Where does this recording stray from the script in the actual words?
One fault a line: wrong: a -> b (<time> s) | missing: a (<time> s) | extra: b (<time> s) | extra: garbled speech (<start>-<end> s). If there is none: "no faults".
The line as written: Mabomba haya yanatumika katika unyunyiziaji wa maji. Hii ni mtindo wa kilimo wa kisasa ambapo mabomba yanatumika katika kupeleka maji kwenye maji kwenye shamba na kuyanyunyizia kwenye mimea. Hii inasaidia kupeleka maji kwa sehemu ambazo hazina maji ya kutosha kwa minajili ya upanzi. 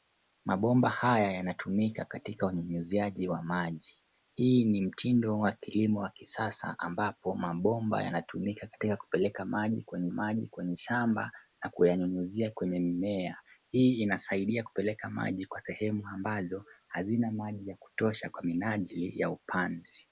no faults